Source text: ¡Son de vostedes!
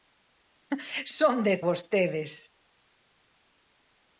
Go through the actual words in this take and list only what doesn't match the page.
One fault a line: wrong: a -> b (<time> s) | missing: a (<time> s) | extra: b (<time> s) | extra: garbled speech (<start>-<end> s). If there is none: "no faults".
no faults